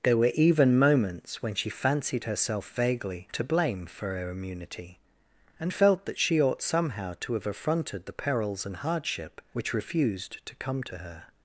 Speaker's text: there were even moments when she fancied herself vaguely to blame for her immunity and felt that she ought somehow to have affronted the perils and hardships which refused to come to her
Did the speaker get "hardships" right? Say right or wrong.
wrong